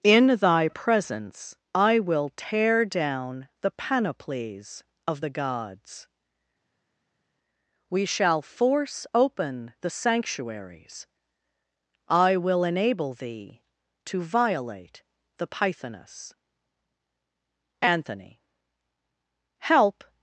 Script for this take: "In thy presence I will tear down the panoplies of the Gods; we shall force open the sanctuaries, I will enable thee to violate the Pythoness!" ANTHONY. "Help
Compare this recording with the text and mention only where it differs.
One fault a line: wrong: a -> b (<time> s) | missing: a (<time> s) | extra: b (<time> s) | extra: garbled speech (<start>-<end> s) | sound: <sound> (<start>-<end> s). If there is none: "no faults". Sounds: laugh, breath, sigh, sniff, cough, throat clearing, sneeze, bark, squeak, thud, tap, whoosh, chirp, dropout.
no faults